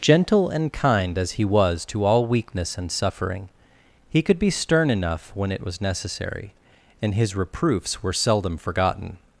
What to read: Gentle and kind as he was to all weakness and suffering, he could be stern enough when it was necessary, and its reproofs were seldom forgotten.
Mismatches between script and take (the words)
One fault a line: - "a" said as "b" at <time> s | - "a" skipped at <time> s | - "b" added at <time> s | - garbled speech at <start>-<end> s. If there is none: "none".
- "its" said as "his" at 7.1 s